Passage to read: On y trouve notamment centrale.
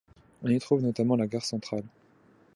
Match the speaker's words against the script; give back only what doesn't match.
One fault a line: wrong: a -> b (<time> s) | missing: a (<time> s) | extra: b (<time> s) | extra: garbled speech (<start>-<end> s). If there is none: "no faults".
extra: la gare (1.1 s)